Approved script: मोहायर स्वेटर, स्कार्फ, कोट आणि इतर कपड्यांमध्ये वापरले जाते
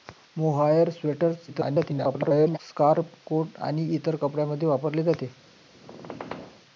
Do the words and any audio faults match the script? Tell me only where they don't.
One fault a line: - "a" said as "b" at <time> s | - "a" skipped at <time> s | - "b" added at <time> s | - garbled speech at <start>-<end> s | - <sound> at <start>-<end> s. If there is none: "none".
- garbled speech at 1.5-2.6 s
- squeak at 5.7-6.6 s